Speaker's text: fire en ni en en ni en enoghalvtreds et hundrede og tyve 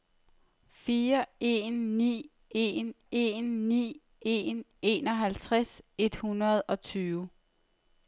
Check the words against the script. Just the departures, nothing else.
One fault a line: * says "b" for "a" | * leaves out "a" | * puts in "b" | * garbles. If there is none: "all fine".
all fine